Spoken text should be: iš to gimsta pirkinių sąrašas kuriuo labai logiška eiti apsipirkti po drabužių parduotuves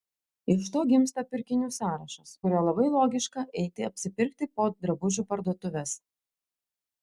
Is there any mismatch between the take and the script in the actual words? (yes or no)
no